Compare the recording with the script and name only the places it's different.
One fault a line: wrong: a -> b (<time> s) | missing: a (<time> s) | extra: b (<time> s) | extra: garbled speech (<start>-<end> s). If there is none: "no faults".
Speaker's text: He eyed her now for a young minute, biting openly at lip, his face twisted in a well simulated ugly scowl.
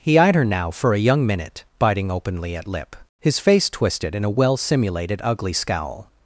no faults